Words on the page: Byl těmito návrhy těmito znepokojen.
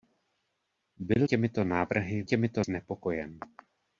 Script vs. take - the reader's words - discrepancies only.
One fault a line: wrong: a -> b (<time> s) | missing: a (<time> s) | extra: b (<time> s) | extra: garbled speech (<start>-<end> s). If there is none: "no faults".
no faults